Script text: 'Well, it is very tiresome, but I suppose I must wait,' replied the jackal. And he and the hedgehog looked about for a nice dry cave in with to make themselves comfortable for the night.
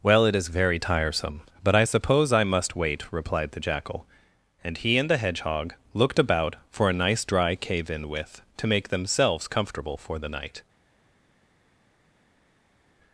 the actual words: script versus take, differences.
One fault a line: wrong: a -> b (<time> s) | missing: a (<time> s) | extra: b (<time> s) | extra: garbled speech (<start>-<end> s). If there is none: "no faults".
no faults